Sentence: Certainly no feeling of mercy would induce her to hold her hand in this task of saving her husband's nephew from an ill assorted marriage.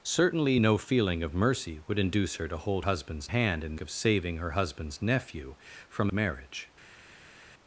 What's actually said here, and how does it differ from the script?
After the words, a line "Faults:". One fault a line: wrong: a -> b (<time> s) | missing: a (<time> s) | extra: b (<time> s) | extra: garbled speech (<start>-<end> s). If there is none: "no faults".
Certainly no feeling of mercy would induce her to hold husband's hand in of saving her husband's nephew from marriage.
Faults:
wrong: her -> husband's (2.8 s)
missing: this task (3.8 s)
missing: an ill assorted (6.1 s)